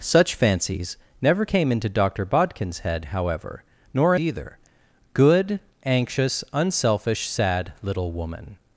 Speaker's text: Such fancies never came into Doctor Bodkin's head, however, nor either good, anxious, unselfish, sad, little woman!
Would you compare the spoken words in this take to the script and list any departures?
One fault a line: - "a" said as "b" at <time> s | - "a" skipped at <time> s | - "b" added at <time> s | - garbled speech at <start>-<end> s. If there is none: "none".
none